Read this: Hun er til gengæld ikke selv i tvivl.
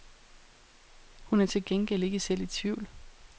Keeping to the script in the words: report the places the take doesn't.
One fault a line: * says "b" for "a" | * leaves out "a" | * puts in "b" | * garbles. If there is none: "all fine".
all fine